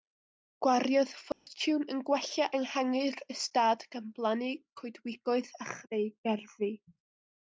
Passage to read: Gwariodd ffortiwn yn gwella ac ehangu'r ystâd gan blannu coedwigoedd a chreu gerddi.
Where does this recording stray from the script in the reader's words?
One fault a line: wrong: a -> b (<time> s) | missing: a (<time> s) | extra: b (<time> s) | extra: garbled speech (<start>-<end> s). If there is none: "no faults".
missing: ac (2.5 s)